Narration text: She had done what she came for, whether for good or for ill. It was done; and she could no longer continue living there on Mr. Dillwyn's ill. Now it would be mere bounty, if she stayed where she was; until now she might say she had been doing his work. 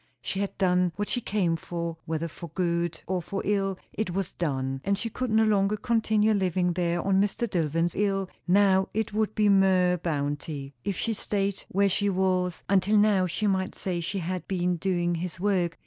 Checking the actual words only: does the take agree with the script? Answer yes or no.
yes